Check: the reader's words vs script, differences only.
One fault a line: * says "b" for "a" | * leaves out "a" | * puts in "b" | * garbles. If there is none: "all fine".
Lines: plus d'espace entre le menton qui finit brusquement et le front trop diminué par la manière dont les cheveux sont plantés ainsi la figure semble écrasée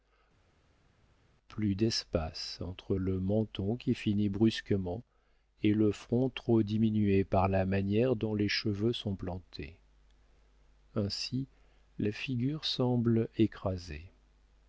all fine